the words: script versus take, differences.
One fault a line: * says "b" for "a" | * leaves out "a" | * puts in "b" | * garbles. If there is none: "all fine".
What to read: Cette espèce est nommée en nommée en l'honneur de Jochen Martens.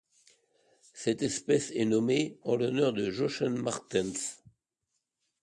* leaves out "nommée en"